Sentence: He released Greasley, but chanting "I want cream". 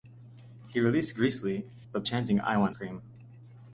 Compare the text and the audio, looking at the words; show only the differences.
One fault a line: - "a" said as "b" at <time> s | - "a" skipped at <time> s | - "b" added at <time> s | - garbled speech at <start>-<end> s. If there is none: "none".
none